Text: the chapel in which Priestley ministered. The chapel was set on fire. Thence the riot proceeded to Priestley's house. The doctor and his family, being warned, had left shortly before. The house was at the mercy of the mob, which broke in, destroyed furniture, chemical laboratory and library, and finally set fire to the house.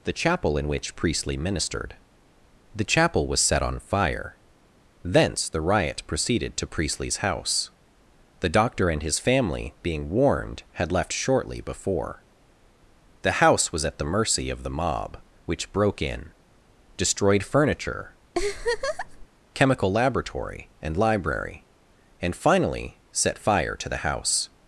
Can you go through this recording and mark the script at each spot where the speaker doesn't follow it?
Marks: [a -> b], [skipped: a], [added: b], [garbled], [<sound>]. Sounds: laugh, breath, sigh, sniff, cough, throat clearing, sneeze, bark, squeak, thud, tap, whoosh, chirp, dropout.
the chapel in which Priestley ministered. The chapel was set on fire. Thence the riot proceeded to Priestley's house. The doctor and his family, being warned, had left shortly before. The house was at the mercy of the mob, which broke in, destroyed furniture, [laugh] chemical laboratory and library, and finally set fire to the house.